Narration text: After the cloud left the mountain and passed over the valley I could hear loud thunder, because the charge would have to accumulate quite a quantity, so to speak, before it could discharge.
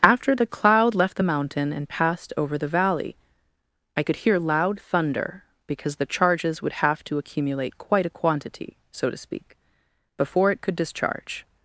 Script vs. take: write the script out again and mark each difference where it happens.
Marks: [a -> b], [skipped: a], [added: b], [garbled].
After the cloud left the mountain and passed over the valley I could hear loud thunder, because the [charge -> charges] would have to accumulate quite a quantity, so to speak, before it could discharge.